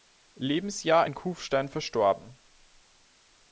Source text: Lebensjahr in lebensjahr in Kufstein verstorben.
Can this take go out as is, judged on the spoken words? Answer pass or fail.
fail